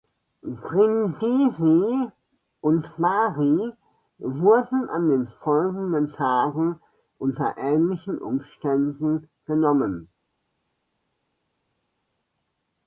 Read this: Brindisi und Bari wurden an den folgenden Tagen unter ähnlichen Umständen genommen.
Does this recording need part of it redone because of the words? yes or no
no